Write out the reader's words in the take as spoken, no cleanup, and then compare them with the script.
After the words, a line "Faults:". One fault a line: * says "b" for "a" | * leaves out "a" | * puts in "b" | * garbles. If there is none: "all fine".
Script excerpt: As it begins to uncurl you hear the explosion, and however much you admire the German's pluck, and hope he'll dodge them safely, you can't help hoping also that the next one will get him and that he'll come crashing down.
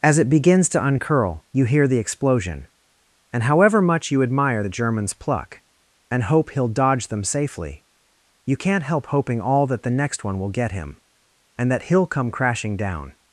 As it begins to uncurl you hear the explosion, and however much you admire the German's pluck, and hope he'll dodge them safely, you can't help hoping all that the next one will get him and that he'll come crashing down.
Faults:
* says "all" for "also"